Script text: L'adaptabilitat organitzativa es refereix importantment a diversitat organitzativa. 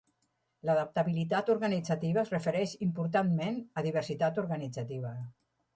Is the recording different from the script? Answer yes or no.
no